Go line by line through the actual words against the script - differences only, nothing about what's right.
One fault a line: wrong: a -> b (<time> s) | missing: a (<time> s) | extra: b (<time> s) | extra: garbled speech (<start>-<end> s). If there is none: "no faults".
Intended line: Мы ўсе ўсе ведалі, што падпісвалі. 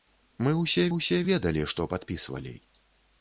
no faults